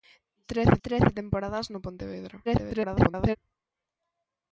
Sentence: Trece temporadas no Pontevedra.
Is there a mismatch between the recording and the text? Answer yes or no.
yes